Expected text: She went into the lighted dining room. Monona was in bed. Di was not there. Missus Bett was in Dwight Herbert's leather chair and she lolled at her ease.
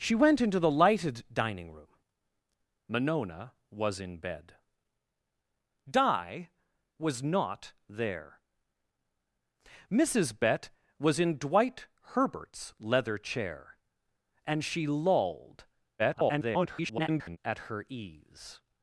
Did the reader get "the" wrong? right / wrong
right